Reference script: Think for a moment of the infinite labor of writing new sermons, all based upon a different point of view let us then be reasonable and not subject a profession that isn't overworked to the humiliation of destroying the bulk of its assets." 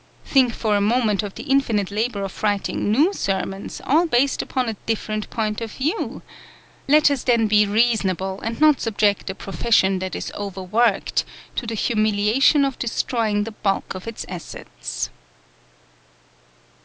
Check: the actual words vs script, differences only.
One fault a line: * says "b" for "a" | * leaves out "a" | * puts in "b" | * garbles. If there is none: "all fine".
* says "is" for "isn't"